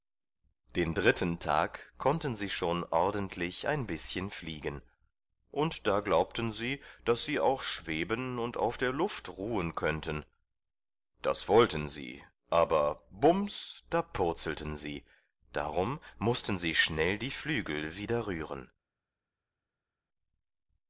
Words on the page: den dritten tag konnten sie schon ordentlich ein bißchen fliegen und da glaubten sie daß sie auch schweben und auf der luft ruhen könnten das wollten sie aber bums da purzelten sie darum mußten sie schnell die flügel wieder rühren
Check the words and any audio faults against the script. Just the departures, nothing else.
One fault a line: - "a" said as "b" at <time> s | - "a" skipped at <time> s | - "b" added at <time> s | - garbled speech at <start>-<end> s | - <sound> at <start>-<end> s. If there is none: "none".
none